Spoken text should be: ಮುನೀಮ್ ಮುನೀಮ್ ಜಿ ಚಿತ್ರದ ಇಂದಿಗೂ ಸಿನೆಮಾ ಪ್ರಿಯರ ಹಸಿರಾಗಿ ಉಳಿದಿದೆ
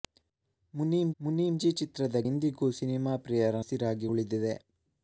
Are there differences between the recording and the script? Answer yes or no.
no